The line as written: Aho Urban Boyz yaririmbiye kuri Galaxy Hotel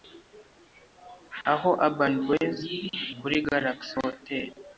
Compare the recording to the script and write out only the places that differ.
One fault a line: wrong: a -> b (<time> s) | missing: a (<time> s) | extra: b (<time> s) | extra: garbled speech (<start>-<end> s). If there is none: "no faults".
missing: yaririmbiye (2.6 s)